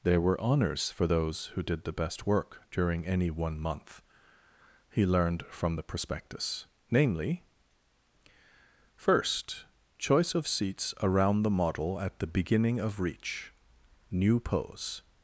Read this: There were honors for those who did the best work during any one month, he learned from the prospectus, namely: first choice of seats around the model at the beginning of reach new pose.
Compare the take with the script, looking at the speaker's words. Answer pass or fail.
pass